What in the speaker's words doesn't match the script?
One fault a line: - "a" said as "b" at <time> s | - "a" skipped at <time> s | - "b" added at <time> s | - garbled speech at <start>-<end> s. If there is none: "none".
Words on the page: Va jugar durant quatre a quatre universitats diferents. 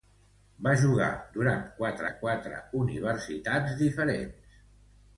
none